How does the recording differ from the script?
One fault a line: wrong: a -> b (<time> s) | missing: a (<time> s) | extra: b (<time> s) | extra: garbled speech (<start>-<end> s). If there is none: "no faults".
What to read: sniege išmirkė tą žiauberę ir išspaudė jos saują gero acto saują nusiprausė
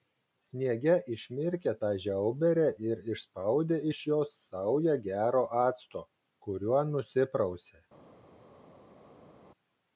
extra: iš (3.9 s)
wrong: saują -> kuriuo (6.5 s)